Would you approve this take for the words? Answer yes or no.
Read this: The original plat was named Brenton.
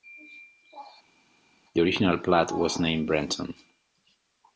yes